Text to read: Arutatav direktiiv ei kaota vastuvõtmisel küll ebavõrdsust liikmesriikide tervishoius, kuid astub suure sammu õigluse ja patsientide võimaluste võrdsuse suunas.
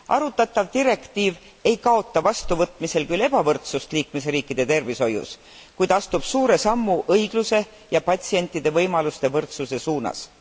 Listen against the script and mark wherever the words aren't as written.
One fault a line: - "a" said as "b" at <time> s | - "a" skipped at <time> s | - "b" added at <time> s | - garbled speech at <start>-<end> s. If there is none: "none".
none